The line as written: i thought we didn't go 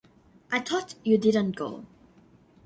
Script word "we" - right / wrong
wrong